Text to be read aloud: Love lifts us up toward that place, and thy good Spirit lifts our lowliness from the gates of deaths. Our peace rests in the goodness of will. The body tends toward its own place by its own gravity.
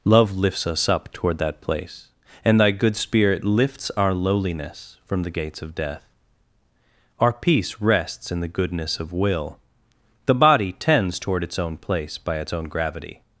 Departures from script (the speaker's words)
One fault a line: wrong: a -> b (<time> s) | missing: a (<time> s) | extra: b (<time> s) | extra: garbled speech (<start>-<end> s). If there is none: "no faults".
wrong: deaths -> death (5.8 s)